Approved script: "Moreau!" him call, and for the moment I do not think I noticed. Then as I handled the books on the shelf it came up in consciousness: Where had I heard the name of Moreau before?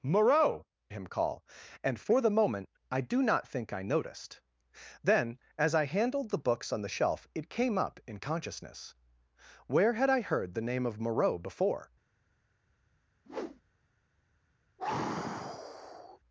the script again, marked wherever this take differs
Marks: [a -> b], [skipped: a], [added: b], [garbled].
"Moreau!" him call, and for the moment I do not think I noticed. Then as I handled the books on the shelf it came up in consciousness: Where had I heard the name of Moreau before?